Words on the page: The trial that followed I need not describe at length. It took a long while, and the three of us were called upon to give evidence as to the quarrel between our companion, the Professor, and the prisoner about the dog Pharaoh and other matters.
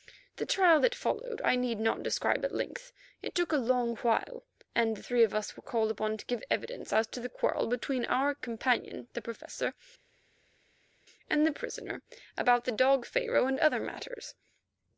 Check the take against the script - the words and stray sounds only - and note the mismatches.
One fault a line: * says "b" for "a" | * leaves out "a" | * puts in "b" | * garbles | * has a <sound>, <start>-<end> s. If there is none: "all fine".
all fine